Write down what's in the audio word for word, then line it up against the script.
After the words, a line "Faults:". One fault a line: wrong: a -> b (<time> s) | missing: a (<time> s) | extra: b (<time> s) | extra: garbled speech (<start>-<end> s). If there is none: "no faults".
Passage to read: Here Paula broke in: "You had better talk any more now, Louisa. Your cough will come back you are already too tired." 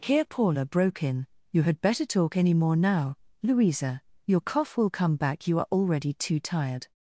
Here Paula broke in: "You had better talk any more now, Louisa. Your cough will come back you are already too tired."
Faults:
no faults